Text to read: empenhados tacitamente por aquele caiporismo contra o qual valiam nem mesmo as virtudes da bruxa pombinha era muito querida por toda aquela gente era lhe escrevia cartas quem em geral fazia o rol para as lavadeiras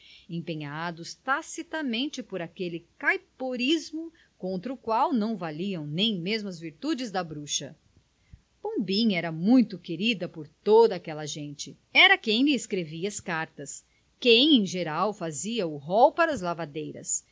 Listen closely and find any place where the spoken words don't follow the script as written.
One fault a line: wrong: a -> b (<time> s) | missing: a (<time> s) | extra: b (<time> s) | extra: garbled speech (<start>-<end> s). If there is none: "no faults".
extra: não (5.1 s)
extra: quem (12.2 s)
extra: as (13.1 s)